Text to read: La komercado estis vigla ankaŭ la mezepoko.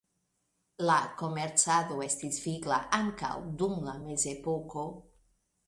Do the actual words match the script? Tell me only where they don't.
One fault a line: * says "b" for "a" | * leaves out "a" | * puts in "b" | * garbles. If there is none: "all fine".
* puts in "dum"